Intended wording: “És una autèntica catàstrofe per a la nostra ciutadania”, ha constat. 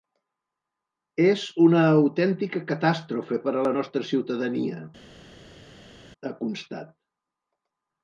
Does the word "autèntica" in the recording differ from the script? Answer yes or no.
no